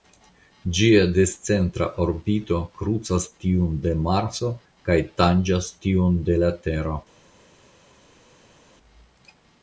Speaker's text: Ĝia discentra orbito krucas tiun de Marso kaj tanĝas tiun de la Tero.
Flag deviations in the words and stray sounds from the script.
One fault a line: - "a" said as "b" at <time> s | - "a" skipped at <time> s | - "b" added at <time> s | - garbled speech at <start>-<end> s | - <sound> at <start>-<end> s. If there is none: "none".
none